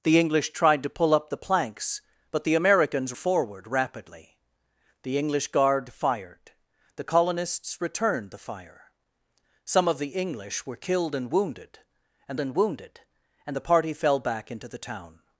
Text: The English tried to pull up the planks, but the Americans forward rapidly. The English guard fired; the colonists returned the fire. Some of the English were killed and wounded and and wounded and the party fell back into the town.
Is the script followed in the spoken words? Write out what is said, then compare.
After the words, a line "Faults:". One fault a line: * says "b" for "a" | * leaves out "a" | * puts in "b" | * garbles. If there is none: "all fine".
The English tried to pull up the planks, but the Americans forward rapidly. The English guard fired; the colonists returned the fire. Some of the English were killed and wounded and and wounded and the party fell back into the town.
Faults:
all fine